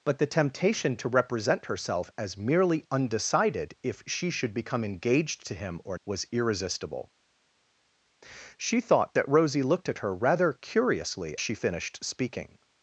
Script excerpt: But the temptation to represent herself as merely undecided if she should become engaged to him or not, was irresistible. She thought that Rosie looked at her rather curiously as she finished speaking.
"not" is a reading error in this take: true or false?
true